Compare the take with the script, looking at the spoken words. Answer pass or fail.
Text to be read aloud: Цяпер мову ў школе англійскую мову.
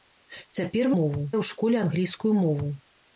pass